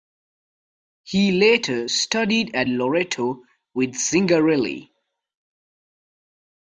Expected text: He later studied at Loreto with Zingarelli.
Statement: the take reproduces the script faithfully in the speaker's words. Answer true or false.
true